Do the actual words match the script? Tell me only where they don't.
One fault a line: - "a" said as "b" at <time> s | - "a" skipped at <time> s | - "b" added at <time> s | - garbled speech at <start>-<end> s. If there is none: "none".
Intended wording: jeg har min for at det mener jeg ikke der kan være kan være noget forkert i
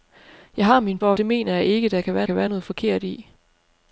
none